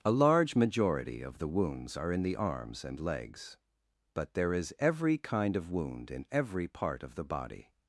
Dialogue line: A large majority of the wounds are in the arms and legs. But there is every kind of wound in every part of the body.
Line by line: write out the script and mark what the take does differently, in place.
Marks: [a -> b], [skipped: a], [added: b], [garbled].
A large majority of the wounds are in the arms and legs. But there is every kind of wound in every part of the body.